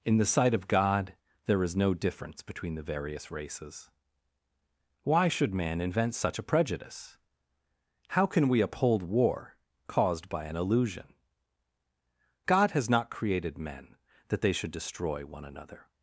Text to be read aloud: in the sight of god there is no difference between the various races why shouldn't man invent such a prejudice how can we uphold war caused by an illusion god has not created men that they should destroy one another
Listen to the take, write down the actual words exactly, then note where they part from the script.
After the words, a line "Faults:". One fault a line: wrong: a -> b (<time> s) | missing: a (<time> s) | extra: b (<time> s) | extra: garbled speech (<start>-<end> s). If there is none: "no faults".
in the sight of god there is no difference between the various races why should man invent such a prejudice how can we uphold war caused by an illusion god has not created men that they should destroy one another
Faults:
wrong: shouldn't -> should (5.3 s)